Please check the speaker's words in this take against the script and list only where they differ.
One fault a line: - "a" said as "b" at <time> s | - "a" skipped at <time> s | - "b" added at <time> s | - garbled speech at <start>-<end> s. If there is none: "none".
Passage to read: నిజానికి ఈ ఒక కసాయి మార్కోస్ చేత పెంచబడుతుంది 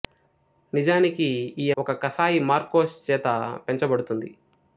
none